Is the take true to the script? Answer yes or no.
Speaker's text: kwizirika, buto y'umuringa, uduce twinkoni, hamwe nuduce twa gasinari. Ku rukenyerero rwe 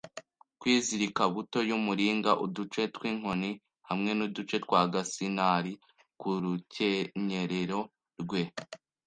yes